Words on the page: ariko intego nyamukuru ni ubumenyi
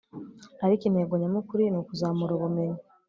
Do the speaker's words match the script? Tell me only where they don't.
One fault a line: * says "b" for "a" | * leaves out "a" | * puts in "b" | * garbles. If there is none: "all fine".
* puts in "ukuzamura"